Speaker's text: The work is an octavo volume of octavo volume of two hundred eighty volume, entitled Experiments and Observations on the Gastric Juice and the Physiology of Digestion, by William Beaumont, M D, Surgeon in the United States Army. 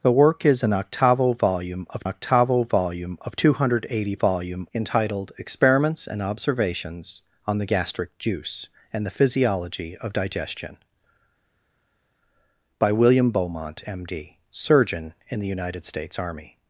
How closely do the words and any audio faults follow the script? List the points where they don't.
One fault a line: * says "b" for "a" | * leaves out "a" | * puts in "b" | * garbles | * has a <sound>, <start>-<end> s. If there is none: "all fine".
all fine